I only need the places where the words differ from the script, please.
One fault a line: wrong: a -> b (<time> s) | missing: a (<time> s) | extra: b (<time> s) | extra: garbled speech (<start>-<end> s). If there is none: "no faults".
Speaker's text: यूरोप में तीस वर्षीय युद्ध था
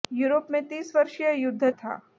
no faults